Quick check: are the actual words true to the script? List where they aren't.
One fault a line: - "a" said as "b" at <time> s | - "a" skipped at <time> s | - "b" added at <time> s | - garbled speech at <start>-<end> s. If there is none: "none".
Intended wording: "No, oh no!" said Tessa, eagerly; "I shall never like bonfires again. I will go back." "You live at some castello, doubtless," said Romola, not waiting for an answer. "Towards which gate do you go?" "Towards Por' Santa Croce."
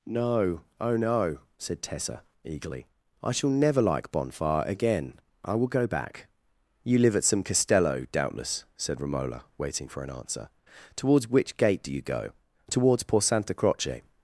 - "bonfires" said as "bonfire" at 4.1 s
- "not" skipped at 9.4 s